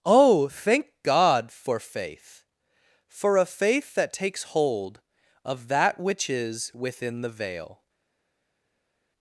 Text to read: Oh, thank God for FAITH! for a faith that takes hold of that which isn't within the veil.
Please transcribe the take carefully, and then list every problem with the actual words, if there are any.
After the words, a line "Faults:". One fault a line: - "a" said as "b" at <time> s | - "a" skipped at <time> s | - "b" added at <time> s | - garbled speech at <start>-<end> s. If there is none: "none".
Oh, thank God for FAITH! for a faith that takes hold of that which is within the veil.
Faults:
- "isn't" said as "is" at 6.3 s